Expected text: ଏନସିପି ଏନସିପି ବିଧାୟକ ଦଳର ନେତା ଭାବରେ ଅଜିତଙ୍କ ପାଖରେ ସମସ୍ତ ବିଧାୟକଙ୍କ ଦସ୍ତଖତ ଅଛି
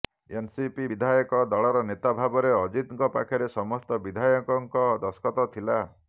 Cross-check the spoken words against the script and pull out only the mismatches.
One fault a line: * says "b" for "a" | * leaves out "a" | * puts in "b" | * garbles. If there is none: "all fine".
* leaves out "ଏନସିପି"
* says "ଥିଲା" for "ଅଛି"